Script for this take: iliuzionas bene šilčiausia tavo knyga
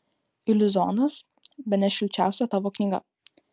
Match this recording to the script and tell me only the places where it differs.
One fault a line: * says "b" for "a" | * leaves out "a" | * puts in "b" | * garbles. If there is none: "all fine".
all fine